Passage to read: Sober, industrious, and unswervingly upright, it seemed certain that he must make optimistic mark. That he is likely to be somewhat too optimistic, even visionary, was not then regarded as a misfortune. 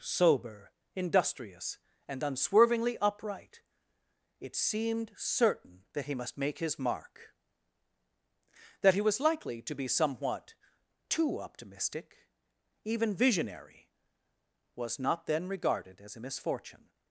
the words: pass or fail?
fail